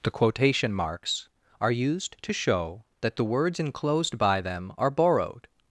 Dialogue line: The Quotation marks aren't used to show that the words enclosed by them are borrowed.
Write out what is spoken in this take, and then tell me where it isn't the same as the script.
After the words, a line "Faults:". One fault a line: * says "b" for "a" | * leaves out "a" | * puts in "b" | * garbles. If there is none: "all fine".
The Quotation marks are used to show that the words enclosed by them are borrowed.
Faults:
* says "are" for "aren't"